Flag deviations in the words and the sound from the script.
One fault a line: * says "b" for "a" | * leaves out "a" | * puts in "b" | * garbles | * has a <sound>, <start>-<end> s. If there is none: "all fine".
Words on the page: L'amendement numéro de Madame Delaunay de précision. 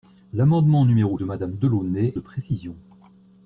all fine